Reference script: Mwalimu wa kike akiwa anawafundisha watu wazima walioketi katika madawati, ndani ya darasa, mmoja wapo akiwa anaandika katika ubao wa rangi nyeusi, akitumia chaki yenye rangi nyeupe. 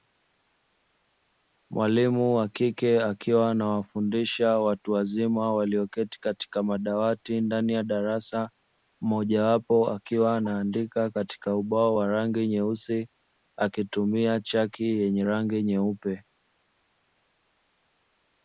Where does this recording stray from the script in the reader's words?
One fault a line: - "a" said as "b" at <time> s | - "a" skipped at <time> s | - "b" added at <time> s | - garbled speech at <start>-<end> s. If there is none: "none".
none